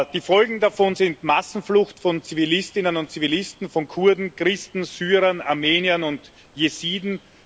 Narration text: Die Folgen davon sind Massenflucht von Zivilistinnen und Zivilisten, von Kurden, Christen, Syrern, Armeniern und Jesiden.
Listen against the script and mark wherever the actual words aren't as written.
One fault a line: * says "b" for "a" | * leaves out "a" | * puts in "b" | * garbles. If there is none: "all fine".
all fine